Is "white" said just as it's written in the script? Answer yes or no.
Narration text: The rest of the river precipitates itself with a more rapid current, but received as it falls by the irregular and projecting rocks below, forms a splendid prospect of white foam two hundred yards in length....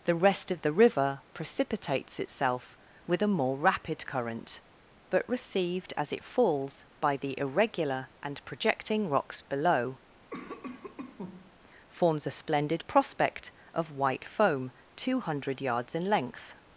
yes